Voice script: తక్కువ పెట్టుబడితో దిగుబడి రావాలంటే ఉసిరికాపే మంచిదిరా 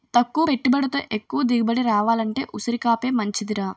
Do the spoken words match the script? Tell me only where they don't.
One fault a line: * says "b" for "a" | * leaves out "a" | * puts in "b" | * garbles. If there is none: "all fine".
* puts in "ఎక్కువ"